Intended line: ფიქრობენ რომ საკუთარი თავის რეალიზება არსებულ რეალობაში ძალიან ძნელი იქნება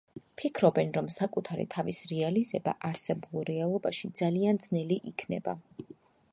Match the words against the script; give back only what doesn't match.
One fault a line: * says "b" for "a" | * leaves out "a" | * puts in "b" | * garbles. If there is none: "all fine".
all fine